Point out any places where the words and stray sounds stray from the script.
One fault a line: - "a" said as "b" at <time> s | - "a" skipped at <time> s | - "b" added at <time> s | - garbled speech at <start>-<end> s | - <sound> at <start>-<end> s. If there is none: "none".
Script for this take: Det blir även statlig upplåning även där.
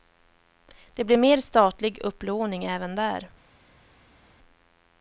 - "även" said as "mer" at 1.2 s